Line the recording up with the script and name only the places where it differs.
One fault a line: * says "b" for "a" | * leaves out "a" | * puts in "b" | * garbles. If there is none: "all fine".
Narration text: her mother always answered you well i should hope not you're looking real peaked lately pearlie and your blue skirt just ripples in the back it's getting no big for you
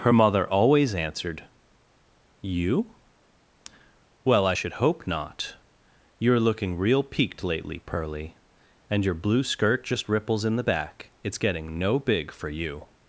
all fine